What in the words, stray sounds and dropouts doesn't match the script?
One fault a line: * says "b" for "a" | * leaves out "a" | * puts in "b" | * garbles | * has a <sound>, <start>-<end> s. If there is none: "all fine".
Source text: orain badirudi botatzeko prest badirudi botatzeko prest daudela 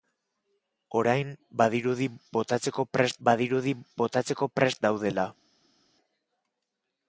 all fine